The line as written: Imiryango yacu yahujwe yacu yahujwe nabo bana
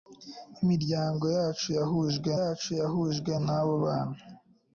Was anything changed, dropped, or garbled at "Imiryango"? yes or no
no